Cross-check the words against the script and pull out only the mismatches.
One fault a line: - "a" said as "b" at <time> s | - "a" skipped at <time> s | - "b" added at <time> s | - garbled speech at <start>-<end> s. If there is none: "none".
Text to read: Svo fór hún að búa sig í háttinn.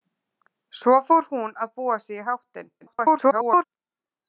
- garbled speech at 2.8-3.6 s